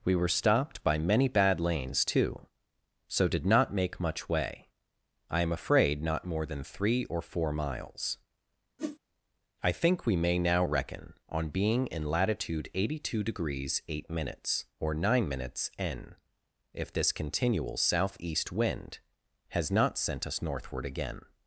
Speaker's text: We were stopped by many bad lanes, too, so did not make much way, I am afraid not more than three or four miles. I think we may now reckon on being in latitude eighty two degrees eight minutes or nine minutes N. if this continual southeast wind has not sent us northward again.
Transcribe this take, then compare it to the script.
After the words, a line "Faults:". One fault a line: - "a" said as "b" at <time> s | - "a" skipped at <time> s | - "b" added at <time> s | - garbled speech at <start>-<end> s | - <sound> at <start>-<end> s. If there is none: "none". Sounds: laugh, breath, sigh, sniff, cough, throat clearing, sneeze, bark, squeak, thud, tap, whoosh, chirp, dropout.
We were stopped by many bad lanes, too, so did not make much way, I am afraid not more than three or four miles. I think we may now reckon on being in latitude eighty two degrees eight minutes or nine minutes N. if this continual southeast wind has not sent us northward again.
Faults:
- whoosh at 8.8-9.0 s